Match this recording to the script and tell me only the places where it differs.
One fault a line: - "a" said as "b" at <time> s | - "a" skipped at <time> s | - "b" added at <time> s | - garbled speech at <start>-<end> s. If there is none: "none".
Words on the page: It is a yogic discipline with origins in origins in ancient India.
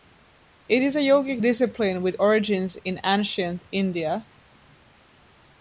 - "origins in" skipped at 3.0 s